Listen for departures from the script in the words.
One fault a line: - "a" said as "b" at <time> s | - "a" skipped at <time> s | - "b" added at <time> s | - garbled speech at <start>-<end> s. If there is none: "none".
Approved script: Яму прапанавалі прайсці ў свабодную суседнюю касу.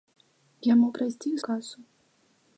- "прапанавалі" skipped at 0.9 s
- "свабодную суседнюю" skipped at 1.4 s